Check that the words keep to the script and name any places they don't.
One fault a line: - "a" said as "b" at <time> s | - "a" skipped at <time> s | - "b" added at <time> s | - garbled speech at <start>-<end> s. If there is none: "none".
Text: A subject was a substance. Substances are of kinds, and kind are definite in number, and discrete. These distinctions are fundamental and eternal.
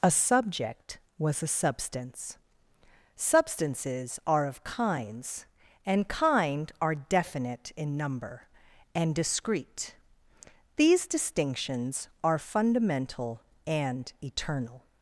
none